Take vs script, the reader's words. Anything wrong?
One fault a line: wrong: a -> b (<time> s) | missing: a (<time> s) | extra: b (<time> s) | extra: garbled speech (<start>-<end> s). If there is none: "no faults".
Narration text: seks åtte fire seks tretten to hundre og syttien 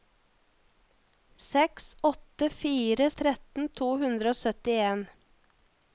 missing: seks (3.1 s)